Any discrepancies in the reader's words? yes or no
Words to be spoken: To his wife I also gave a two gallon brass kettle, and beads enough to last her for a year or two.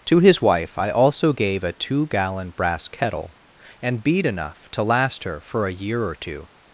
yes